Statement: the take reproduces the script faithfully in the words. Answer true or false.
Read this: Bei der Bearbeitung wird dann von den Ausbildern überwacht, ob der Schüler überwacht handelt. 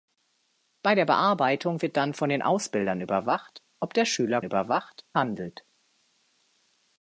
true